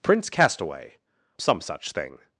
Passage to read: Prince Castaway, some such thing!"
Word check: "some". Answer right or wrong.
right